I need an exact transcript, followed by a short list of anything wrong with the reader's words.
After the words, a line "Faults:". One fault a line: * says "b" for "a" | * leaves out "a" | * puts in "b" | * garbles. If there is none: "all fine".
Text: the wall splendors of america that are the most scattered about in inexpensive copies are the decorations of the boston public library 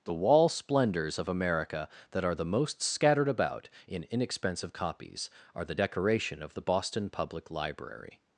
the wall splendors of america that are the most scattered about in inexpensive copies are the decoration of the boston public library
Faults:
* says "decoration" for "decorations"